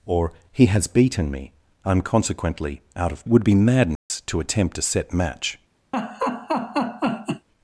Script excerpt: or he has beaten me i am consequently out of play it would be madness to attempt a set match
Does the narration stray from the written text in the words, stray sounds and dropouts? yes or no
yes